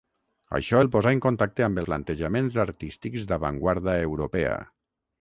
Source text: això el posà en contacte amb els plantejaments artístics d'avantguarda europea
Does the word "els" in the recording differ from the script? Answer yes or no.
yes